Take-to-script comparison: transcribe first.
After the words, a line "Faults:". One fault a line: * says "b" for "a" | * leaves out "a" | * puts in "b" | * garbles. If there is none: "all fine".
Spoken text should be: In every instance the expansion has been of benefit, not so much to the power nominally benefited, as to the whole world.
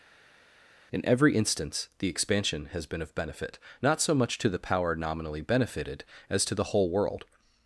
In every instance the expansion has been of benefit, not so much to the power nominally benefited, as to the whole world.
Faults:
all fine